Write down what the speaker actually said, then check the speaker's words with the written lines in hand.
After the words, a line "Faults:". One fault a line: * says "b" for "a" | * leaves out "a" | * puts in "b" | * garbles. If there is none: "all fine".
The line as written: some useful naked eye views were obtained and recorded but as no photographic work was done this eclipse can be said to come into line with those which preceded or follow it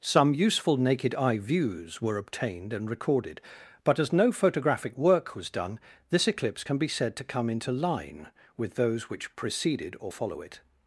some useful naked eye views were obtained and recorded but as no photographic work was done this eclipse can be said to come into line with those which preceded or follow it
Faults:
all fine